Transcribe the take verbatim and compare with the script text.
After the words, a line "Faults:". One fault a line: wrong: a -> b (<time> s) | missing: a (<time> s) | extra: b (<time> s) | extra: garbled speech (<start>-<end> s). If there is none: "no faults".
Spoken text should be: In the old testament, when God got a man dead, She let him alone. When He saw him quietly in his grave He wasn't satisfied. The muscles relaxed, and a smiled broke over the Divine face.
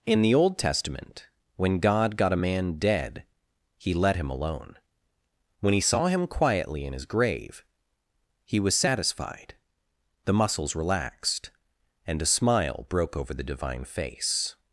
In the old testament, when God got a man dead, He let him alone. When He saw him quietly in his grave He was satisfied. The muscles relaxed, and a smile broke over the Divine face.
Faults:
wrong: She -> He (3.8 s)
wrong: wasn't -> was (8.6 s)
wrong: smiled -> smile (12.3 s)